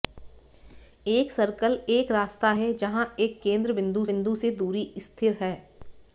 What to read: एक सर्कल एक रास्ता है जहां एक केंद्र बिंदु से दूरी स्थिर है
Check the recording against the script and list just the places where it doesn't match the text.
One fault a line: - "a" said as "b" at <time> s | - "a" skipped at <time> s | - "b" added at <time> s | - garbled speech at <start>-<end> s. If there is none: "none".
- "बिंदु" added at 4.0 s